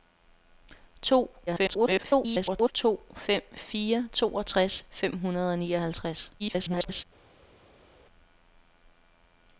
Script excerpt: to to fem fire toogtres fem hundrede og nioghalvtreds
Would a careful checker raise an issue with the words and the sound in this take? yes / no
yes